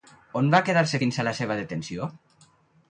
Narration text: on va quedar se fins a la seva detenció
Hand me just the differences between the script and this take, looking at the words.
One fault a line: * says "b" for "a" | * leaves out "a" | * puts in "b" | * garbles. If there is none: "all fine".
all fine